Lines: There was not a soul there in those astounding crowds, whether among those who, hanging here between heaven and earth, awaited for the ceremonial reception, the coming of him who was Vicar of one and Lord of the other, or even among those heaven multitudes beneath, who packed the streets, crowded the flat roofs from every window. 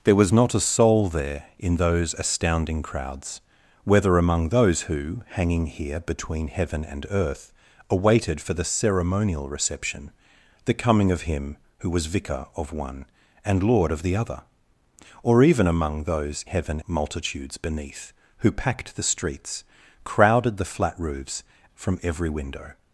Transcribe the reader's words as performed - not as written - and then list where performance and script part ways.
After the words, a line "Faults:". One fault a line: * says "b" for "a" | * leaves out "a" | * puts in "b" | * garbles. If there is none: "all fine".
There was not a soul there in those astounding crowds, whether among those who, hanging here between heaven and earth, awaited for the ceremonial reception, the coming of him who was Vicar of one and Lord of the other, or even among those heaven multitudes beneath, who packed the streets, crowded the flat roofs from every window.
Faults:
all fine